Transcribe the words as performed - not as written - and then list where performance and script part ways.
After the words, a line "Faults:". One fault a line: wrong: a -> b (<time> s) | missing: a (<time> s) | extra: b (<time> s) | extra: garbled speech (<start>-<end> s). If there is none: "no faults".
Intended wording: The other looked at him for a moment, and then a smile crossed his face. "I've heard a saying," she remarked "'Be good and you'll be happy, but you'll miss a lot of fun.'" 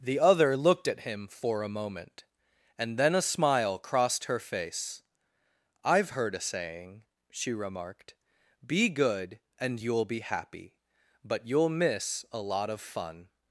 The other looked at him for a moment, and then a smile crossed her face. "I've heard a saying," she remarked "'Be good and you'll be happy, but you'll miss a lot of fun.'"
Faults:
wrong: his -> her (4.2 s)